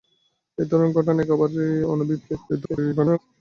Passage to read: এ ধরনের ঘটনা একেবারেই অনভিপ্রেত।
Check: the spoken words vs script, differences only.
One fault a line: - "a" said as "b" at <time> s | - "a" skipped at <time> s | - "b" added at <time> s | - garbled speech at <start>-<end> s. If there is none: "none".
- garbled speech at 2.5-3.2 s